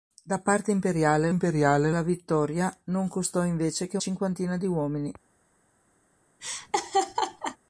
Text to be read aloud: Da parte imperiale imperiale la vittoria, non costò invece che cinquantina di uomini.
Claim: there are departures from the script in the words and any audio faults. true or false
true